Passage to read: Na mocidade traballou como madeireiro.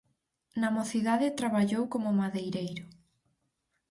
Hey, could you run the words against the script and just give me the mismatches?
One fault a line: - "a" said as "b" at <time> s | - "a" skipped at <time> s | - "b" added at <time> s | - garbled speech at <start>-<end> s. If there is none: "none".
none